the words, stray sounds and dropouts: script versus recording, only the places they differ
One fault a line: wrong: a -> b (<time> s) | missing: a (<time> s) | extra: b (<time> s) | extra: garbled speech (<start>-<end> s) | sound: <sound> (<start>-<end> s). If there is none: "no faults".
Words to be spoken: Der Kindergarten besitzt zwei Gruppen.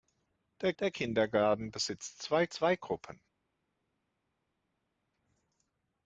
extra: der (0.8 s)
extra: zwei (2.5 s)